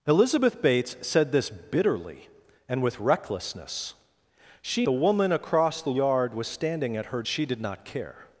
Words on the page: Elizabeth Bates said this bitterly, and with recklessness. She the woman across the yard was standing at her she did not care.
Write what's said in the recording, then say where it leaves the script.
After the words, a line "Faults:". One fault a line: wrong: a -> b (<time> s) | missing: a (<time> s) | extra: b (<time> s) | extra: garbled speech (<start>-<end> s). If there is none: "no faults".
Elizabeth Bates said this bitterly, and with recklessness. She the woman across the yard was standing at her she did not care.
Faults:
no faults